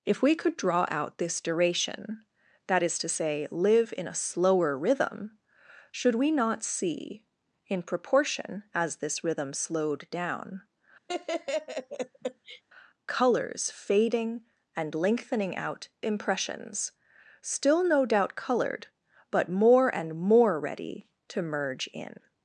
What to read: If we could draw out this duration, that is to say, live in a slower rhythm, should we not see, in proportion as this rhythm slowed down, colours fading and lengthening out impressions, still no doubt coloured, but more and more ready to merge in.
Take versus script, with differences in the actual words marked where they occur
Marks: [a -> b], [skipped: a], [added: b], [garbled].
If we could draw out this duration, that is to say, live in a slower rhythm, should we not see, in proportion as this rhythm slowed down, colours fading and lengthening out impressions, still no doubt coloured, but more and more ready to merge in.